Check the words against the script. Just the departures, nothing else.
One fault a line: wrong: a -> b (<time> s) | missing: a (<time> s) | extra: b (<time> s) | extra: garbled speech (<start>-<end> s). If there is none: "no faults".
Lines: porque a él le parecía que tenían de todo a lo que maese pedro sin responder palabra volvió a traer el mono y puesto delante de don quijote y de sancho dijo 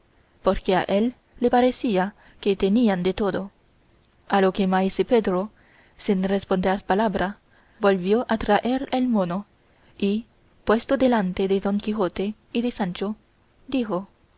no faults